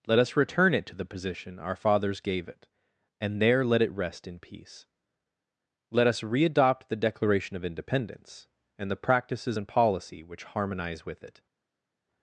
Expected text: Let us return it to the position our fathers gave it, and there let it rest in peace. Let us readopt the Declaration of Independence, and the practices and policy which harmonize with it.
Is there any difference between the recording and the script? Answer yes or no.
no